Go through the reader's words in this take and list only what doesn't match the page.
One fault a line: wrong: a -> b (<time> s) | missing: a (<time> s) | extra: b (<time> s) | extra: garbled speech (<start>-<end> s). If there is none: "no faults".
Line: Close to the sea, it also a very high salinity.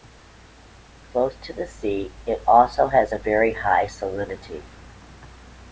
extra: has (2.9 s)